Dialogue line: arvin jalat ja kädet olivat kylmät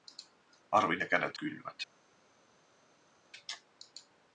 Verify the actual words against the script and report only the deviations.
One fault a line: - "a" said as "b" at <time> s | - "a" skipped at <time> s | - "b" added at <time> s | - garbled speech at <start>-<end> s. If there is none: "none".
- "jalat" skipped at 1.0 s
- "olivat" skipped at 1.4 s